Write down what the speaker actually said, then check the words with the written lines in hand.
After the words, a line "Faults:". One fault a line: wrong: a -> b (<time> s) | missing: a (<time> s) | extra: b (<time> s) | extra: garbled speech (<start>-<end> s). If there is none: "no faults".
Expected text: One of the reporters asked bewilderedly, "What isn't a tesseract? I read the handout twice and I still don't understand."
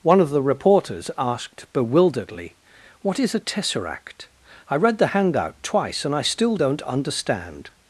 One of the reporters asked bewilderedly, "What is a tesseract? I read the handout twice and I still don't understand."
Faults:
wrong: isn't -> is (3.2 s)